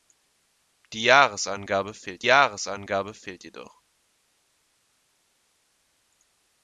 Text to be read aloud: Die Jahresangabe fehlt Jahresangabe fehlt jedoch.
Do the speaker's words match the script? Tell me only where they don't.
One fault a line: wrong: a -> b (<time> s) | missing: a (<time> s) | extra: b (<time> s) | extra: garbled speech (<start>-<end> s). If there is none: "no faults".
no faults